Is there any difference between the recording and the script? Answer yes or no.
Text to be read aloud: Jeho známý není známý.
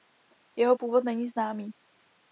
yes